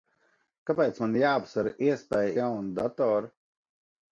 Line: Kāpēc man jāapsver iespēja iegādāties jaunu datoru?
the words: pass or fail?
fail